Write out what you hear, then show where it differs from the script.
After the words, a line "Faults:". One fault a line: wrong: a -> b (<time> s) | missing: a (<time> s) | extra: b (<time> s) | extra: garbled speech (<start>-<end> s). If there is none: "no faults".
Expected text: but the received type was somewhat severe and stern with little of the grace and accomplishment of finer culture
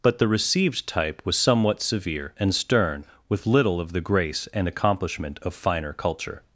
but the received type was somewhat severe and stern with little of the grace and accomplishment of finer culture
Faults:
no faults